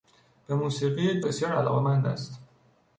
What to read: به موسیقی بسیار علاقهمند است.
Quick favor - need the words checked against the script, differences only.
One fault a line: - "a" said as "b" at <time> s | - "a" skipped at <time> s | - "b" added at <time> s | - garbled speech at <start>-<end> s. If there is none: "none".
none